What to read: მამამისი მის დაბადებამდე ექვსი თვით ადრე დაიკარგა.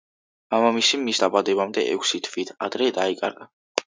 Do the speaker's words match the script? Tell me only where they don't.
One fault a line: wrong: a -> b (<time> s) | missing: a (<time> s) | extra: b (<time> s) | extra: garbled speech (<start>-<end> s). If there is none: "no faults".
no faults